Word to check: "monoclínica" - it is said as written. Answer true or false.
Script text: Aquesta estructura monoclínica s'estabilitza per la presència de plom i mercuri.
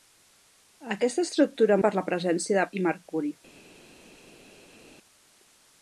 false